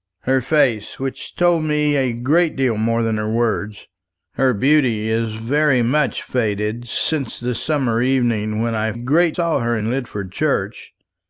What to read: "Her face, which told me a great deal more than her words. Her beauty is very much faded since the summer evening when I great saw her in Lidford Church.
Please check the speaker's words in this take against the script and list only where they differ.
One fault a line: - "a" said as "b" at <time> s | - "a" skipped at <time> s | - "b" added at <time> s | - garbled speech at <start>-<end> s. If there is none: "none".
none